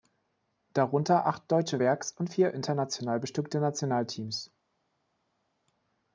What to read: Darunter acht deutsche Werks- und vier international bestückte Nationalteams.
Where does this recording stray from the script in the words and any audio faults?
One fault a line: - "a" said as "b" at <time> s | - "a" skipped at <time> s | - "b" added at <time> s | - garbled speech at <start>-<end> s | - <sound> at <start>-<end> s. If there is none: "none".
none